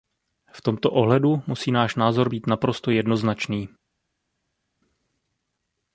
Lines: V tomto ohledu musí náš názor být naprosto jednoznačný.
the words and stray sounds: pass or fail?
pass